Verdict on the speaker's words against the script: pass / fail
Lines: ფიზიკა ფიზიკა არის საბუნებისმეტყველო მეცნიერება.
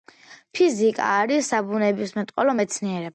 fail